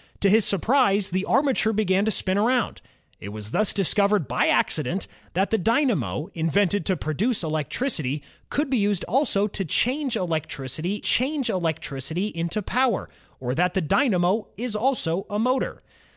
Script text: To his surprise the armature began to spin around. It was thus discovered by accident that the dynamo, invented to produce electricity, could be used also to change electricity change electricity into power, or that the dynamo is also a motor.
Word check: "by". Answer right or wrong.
right